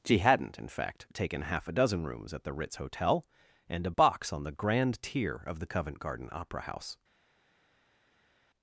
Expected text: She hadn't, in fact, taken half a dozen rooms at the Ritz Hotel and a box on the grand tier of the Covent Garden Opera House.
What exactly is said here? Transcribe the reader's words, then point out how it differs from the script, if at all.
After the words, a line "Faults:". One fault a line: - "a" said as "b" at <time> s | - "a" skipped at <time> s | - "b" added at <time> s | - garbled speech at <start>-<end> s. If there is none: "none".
She hadn't, in fact, taken half a dozen rooms at the Ritz Hotel and a box on the grand tier of the Covent Garden Opera House.
Faults:
none